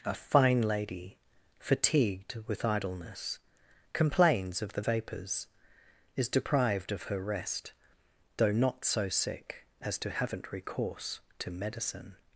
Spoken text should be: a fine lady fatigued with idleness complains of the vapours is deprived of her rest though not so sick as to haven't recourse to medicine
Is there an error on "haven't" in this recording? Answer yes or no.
no